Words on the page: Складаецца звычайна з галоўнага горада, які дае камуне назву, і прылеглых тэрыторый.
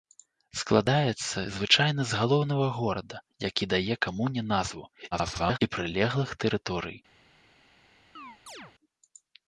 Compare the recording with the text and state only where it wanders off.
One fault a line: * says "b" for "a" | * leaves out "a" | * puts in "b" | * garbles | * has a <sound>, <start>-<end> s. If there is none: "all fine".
* garbles
* has a chirp, 8.2-8.7 s